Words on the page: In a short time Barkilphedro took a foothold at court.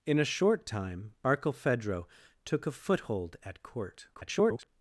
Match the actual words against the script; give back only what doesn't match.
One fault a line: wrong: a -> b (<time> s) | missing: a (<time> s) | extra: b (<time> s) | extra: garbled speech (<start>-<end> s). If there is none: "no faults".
extra: garbled speech (4.1-4.7 s)